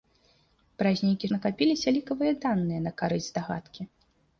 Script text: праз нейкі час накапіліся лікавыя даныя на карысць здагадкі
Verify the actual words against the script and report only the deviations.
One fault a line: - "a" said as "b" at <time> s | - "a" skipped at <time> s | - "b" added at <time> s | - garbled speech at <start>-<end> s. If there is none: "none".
- "час" skipped at 1.3 s